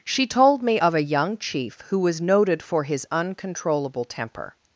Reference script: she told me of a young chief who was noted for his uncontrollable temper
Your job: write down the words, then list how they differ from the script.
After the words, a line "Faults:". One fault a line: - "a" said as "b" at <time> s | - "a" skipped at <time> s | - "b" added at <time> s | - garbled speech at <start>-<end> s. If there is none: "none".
she told me of a young chief who was noted for his uncontrollable temper
Faults:
none